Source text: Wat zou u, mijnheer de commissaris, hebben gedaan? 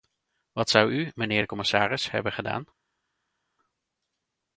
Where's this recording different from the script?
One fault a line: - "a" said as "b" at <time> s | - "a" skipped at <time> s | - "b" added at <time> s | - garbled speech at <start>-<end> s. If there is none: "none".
none